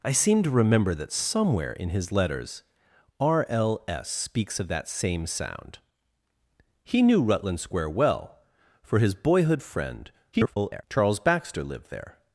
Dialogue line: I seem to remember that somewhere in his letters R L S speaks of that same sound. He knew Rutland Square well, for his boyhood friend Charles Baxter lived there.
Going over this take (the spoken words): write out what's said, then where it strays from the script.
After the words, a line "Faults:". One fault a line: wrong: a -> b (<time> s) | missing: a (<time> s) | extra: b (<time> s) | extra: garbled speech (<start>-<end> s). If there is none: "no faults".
I seem to remember that somewhere in his letters R L S speaks of that same sound. He knew Rutland Square well, for his boyhood friend [garbled] Charles Baxter lived there.
Faults:
extra: garbled speech (10.3-10.8 s)